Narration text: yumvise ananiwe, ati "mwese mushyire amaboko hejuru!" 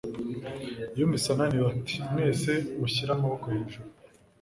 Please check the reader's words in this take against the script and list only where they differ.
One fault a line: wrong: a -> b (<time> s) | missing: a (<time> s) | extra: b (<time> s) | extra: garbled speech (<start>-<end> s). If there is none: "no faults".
no faults